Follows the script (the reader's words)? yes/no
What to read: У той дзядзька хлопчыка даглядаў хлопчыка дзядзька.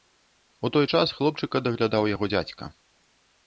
no